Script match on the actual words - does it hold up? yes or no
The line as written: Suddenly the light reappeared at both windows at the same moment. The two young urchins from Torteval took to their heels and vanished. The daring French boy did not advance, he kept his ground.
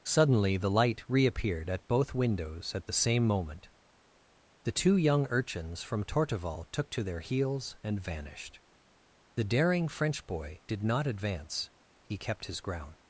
yes